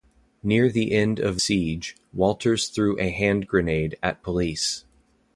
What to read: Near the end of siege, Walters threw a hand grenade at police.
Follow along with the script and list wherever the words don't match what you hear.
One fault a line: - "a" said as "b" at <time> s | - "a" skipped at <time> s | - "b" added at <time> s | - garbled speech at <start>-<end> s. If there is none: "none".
none